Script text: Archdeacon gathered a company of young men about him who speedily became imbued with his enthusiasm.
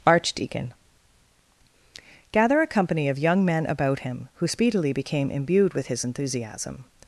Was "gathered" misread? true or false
true